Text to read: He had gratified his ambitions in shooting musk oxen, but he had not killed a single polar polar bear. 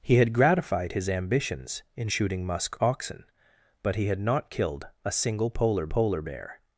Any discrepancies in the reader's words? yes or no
no